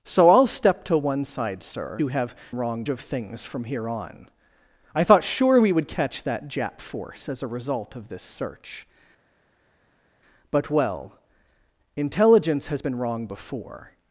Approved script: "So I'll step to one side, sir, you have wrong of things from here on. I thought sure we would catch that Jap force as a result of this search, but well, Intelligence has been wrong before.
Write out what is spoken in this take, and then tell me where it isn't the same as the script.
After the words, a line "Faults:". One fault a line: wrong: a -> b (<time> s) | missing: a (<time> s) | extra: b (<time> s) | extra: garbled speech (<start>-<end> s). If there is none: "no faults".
"So I'll step to one side, sir, you have wrong of things from here on. I thought sure we would catch that Jap force as a result of this search, but well, Intelligence has been wrong before.
Faults:
no faults